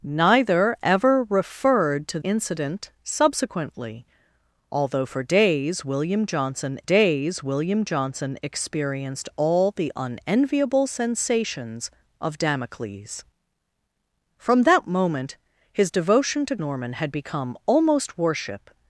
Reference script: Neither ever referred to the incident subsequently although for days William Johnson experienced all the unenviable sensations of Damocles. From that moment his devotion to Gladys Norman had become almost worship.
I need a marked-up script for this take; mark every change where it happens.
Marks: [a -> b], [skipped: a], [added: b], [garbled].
Neither ever referred to [skipped: the] incident subsequently although for days William Johnson [added: days William Johnson] experienced all the unenviable sensations of Damocles. From that moment his devotion to [skipped: Gladys] Norman had become almost worship.